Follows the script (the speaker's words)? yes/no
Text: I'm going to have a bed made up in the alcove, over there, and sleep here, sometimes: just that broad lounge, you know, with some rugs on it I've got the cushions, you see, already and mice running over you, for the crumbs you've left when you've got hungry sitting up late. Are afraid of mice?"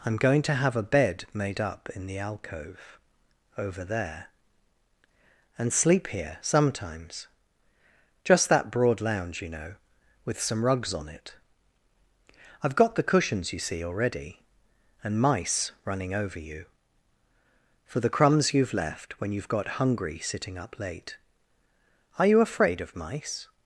no